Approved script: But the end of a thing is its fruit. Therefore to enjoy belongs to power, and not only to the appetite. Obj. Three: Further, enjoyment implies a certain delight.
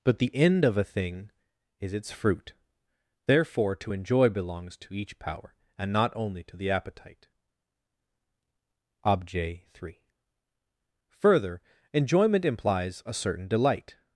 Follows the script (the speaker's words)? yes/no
no